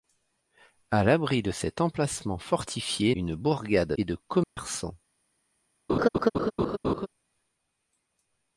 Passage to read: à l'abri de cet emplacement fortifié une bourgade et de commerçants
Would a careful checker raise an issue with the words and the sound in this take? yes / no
yes